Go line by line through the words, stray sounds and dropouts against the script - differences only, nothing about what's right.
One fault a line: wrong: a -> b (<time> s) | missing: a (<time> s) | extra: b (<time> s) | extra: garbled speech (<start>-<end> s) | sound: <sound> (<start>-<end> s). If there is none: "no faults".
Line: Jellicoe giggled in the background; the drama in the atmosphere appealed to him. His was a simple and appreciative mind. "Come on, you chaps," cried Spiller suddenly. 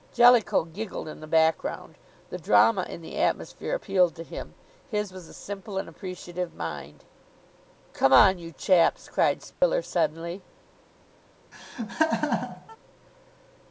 sound: dropout (9.5-9.6 s)
sound: laugh (11.5-12.8 s)